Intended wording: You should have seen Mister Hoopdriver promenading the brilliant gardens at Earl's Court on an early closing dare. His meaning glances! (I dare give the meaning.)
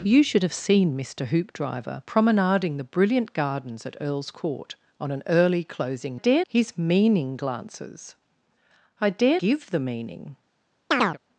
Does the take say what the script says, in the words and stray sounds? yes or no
no